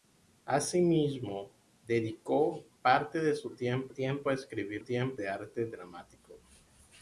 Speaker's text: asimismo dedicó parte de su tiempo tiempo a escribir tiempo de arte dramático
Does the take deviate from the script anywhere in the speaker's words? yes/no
no